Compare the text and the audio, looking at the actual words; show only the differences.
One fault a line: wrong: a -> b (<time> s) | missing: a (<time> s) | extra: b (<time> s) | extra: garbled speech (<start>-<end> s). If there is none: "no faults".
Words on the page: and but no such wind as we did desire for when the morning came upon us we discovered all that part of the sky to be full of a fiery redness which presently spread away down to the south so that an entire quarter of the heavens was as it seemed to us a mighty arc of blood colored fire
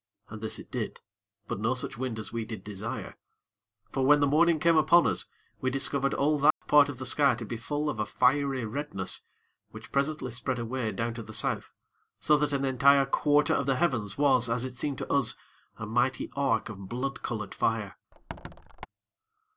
extra: this it did (0.4 s)